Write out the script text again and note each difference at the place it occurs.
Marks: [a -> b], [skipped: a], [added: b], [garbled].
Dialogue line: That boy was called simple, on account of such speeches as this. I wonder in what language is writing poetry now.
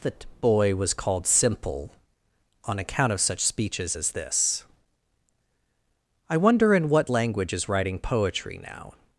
That boy was called simple, on account of such speeches as this. I wonder in what language is writing poetry now.